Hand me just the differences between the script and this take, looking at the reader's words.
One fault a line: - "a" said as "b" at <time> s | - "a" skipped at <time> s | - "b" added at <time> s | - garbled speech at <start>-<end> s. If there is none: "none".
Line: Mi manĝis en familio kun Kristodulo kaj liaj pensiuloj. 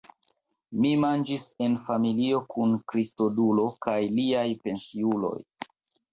none